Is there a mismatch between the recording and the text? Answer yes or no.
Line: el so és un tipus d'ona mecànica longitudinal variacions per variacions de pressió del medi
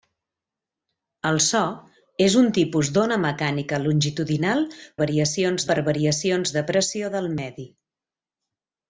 no